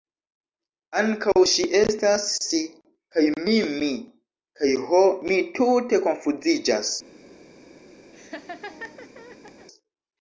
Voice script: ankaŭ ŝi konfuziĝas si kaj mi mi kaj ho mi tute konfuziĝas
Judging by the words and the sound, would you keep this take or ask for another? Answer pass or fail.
fail